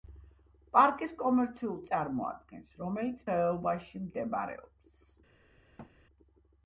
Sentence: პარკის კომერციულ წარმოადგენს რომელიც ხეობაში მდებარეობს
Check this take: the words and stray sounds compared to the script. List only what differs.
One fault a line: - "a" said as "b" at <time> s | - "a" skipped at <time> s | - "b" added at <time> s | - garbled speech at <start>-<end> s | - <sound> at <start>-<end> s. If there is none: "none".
- thud at 5.8-5.9 s